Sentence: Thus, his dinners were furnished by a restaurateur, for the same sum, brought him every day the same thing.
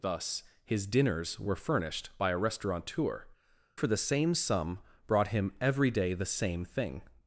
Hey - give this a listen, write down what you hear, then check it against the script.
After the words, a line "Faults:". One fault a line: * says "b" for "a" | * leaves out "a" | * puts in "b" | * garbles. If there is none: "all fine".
Thus, his dinners were furnished by a restaurateur, for the same sum, brought him every day the same thing.
Faults:
all fine